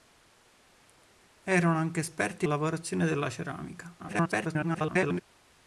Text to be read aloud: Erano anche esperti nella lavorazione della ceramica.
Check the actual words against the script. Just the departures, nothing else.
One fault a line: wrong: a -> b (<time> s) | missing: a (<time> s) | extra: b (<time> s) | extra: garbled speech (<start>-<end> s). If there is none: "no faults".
missing: nella (2.5 s)
extra: garbled speech (4.0-5.2 s)